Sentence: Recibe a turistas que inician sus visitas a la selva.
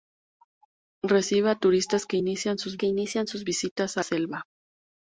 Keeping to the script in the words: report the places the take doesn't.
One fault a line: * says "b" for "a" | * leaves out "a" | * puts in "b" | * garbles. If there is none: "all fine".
* puts in "que inician sus"
* leaves out "la"